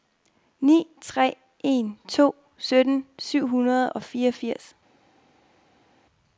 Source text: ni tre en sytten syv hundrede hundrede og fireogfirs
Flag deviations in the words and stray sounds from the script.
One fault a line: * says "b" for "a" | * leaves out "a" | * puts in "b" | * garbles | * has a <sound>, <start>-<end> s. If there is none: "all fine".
* puts in "to"
* leaves out "hundrede"